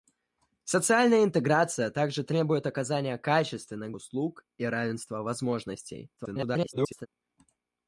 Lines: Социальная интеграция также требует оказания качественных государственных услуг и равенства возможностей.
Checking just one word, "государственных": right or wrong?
wrong